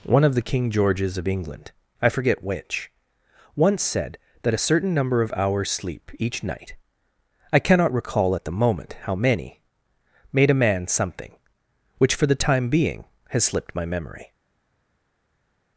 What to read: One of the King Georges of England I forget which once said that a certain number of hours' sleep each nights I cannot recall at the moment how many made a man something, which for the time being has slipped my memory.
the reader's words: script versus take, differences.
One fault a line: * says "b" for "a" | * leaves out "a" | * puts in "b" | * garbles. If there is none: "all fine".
* says "night" for "nights"